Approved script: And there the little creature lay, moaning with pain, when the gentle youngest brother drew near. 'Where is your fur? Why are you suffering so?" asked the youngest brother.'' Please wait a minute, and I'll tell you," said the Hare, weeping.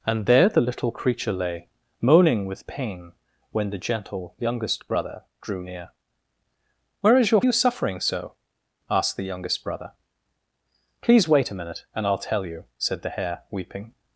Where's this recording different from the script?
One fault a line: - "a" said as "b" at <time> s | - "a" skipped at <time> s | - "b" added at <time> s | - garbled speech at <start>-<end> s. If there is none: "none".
- "fur Why are" skipped at 7.4 s